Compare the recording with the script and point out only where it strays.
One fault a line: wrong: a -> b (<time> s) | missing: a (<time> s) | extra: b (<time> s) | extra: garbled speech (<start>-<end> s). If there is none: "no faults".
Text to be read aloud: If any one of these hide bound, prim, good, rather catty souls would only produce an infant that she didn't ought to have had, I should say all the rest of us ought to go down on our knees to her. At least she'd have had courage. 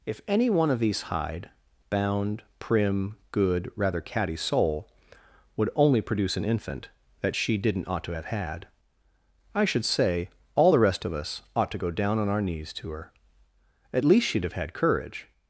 wrong: souls -> soul (4.3 s)